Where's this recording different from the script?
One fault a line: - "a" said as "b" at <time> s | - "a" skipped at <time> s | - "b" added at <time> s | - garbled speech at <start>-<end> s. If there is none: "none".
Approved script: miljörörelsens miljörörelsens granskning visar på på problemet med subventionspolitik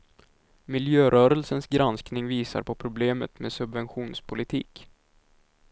- "miljörörelsens" skipped at 1.7 s
- "på" skipped at 2.7 s